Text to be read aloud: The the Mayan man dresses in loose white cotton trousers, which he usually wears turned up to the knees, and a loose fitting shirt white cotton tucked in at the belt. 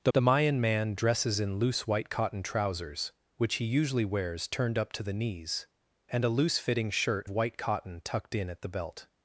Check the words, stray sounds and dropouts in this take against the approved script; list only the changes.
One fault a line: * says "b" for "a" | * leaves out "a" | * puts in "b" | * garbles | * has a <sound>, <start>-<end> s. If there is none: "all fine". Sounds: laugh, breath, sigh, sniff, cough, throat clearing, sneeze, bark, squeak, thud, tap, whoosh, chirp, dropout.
all fine